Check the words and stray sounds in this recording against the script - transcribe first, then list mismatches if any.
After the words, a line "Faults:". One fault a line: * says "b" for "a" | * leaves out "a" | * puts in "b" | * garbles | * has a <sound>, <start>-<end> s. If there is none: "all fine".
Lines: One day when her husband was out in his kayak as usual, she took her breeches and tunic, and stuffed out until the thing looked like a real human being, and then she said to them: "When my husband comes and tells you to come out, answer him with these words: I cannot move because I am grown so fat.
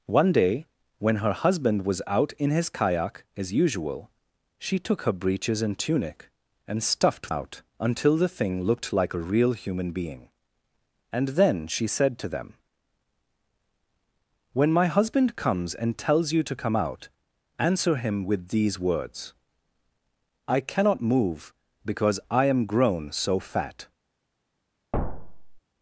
One day when her husband was out in his kayak as usual, she took her breeches and tunic, and stuffed out until the thing looked like a real human being, and then she said to them: "When my husband comes and tells you to come out, answer him with these words: I cannot move because I am grown so fat.
Faults:
* has a thud, 24.9-25.6 s